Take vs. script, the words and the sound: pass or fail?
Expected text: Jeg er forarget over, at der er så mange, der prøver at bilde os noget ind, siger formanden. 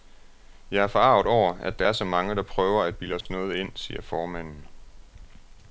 fail